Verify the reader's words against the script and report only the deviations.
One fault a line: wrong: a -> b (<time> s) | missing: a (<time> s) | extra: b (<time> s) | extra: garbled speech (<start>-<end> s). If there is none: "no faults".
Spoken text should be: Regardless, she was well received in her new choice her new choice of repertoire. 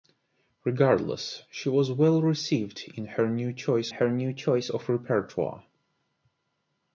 no faults